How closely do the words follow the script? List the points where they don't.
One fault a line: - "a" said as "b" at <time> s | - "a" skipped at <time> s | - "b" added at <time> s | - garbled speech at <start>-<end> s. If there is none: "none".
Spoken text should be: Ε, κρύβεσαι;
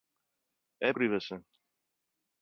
none